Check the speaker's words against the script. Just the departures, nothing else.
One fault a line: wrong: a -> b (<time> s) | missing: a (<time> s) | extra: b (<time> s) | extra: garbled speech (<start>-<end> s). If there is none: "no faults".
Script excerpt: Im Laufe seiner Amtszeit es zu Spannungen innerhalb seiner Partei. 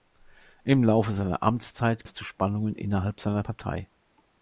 no faults